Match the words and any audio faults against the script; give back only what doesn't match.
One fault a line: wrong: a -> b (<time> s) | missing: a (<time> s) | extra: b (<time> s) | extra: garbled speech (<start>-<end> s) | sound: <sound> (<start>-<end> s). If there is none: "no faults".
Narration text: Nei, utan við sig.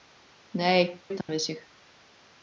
sound: dropout (1.2-1.3 s)